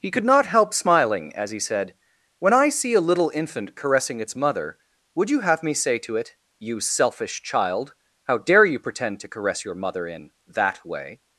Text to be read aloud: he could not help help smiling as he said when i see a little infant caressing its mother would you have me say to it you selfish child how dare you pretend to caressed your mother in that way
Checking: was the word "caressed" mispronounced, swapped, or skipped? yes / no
yes